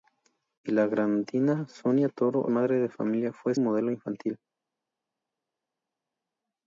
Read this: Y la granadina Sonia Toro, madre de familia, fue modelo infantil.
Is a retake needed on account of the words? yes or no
no